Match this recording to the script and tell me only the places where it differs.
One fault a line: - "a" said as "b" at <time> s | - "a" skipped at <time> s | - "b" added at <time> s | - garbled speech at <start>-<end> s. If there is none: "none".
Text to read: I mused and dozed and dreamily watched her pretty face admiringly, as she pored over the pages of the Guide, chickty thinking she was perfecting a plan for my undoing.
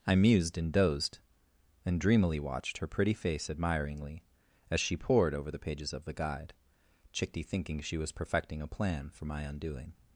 none